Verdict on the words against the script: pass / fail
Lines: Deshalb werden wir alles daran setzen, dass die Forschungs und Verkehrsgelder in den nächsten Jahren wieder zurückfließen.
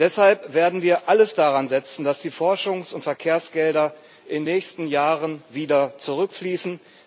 fail